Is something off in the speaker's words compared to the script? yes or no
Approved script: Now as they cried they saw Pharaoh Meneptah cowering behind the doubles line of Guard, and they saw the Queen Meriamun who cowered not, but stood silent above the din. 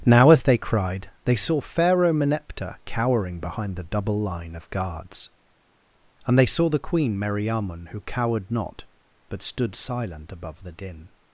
yes